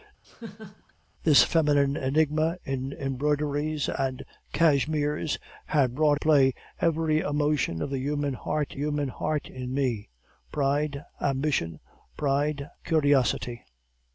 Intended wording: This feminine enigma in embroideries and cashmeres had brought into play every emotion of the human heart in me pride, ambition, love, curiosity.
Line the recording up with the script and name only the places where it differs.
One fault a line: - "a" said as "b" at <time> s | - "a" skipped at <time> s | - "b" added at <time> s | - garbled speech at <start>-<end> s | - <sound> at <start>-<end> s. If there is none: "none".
- laugh at 0.2-0.9 s
- "into" skipped at 6.2 s
- "human heart" added at 8.7 s
- "love" said as "pride" at 12.2 s